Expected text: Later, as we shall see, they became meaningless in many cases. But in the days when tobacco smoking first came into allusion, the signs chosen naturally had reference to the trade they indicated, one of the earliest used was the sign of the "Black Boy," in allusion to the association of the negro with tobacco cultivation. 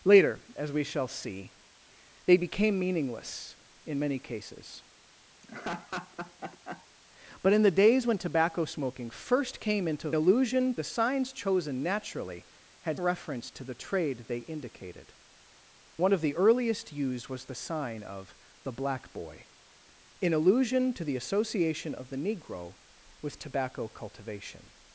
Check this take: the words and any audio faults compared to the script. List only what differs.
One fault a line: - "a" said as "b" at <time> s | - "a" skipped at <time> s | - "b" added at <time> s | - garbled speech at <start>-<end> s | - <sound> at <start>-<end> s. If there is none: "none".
- laugh at 5.4-6.9 s